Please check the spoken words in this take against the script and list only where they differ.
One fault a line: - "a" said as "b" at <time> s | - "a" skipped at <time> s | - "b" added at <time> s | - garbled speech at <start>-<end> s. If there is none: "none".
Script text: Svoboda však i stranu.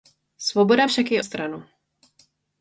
none